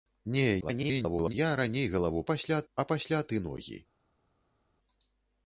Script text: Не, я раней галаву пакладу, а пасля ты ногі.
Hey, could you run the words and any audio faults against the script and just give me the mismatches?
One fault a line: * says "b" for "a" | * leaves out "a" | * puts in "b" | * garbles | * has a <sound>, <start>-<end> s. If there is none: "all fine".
* garbles
* says "пасля" for "пакладу"